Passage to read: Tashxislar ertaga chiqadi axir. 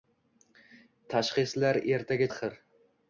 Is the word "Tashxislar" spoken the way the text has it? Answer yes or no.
yes